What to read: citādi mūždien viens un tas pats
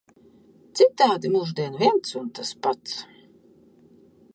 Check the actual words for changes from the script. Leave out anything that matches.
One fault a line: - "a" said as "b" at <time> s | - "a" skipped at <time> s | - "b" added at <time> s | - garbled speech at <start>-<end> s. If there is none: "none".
none